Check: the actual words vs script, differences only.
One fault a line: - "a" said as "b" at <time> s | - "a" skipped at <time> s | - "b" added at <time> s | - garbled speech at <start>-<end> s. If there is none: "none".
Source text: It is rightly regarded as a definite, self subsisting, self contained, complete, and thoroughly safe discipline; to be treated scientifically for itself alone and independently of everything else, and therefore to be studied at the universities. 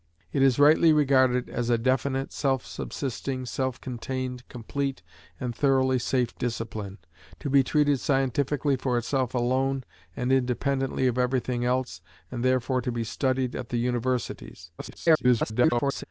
- garbled speech at 14.8-16.0 s